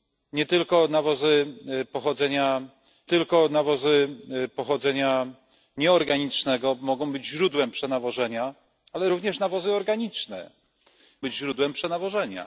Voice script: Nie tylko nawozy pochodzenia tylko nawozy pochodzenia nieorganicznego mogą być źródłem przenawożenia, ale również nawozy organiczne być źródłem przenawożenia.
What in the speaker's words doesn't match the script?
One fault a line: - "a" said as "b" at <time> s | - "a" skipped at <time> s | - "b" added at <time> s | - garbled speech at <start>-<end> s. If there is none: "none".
none